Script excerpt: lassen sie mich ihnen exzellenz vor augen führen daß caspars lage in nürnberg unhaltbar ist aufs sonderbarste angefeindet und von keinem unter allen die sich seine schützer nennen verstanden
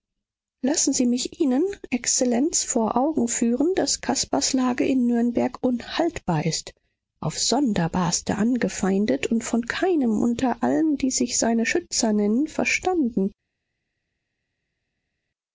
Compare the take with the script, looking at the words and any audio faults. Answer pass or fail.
pass